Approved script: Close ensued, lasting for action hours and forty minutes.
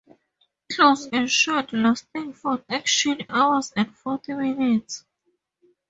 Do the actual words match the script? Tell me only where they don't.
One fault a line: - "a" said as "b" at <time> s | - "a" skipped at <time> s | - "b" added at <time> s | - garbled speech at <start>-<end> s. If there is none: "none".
none